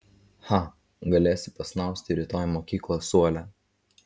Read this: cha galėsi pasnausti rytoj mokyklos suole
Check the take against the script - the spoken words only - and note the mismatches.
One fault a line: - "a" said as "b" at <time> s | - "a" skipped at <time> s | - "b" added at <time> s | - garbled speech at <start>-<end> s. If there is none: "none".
none